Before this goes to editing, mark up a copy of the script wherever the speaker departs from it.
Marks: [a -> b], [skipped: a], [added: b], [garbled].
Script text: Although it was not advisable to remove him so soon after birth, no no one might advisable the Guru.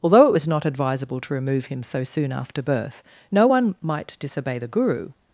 Although it was not advisable to remove him so soon after birth, no [skipped: no] one might [advisable -> disobey] the Guru.